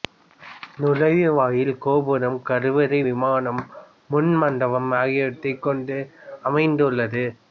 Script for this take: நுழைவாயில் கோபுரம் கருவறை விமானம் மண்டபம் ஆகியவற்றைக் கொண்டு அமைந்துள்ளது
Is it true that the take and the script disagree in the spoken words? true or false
true